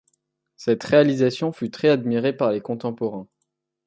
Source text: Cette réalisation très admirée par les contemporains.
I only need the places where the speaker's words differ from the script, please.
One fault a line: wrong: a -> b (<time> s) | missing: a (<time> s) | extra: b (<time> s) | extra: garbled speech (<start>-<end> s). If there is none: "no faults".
extra: fut (1.5 s)